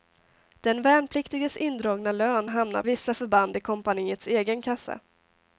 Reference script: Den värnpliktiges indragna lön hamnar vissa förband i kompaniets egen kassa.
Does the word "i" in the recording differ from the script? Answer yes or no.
no